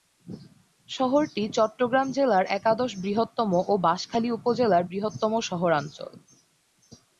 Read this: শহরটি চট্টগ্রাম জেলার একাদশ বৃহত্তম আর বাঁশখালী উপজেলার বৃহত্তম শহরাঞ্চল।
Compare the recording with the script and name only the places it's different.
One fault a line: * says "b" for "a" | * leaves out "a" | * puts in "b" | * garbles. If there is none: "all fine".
* says "ও" for "আর"